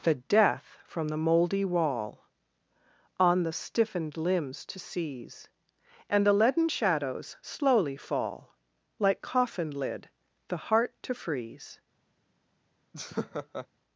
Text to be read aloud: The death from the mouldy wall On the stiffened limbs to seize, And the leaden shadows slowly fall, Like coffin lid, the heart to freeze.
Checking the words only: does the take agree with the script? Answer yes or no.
yes